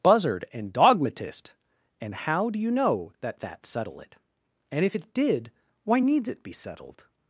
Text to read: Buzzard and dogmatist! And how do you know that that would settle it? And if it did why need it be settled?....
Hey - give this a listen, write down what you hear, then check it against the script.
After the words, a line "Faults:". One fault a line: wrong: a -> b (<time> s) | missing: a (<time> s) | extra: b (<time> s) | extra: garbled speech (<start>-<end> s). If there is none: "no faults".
Buzzard and dogmatist! And how do you know that that settle it? And if it did why needs it be settled?....
Faults:
missing: would (3.6 s)
wrong: need -> needs (6.0 s)